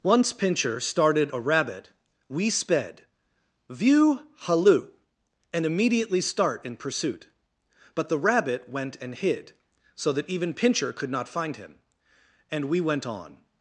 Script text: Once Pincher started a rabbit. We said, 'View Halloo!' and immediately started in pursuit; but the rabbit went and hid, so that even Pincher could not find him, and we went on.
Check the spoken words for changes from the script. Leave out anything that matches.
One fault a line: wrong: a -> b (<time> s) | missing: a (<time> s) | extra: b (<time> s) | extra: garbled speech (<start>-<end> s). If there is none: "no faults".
wrong: said -> sped (2.5 s)
wrong: started -> start (6.2 s)